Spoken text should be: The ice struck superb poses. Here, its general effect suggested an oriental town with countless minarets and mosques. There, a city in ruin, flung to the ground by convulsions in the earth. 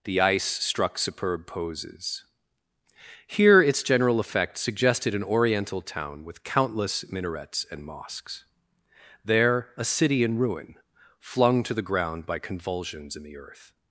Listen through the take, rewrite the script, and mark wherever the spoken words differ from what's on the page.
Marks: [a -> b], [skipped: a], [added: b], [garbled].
The ice struck superb poses. Here, its general effect suggested an oriental town with countless minarets and mosques. There, a city in ruin, flung to the ground by convulsions in the earth.